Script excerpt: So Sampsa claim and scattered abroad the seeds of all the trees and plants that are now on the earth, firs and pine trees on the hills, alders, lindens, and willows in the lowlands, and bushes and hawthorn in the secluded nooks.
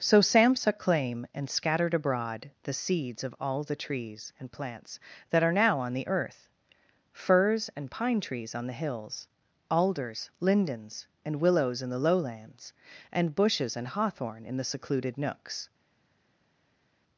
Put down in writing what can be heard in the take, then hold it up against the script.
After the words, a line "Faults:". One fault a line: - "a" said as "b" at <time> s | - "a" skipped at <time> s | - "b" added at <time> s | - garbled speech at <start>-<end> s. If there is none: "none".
So Sampsa claim and scattered abroad the seeds of all the trees and plants that are now on the earth, firs and pine trees on the hills, alders, lindens, and willows in the lowlands, and bushes and hawthorn in the secluded nooks.
Faults:
none